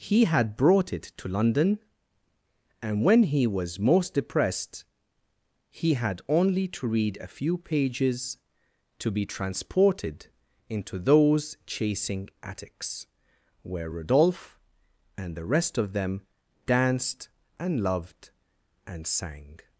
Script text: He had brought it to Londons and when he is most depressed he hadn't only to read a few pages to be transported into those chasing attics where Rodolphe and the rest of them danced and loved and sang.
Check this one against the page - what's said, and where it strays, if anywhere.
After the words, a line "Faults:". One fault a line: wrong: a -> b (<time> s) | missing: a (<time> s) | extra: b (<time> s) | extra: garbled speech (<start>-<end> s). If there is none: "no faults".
He had brought it to London and when he was most depressed he had only to read a few pages to be transported into those chasing attics where Rodolphe and the rest of them danced and loved and sang.
Faults:
wrong: Londons -> London (1.3 s)
wrong: is -> was (3.5 s)
wrong: hadn't -> had (5.9 s)